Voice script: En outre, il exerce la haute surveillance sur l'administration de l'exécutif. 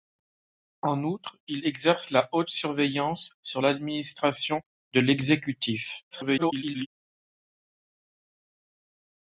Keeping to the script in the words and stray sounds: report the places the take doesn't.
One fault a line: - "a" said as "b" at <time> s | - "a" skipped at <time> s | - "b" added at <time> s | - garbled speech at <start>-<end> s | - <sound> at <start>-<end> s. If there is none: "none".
- garbled speech at 6.1-6.9 s